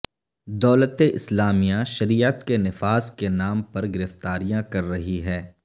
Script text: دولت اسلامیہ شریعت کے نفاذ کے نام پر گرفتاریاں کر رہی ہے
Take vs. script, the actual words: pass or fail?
pass